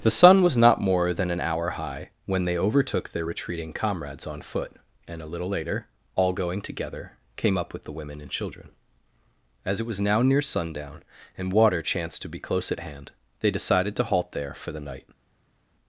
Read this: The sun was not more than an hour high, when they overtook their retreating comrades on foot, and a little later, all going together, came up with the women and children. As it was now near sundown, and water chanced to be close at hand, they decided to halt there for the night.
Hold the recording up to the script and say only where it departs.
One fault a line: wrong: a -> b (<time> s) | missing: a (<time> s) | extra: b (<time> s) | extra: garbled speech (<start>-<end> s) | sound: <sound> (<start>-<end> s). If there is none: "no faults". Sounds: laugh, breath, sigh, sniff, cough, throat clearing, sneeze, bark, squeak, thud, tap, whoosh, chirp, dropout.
no faults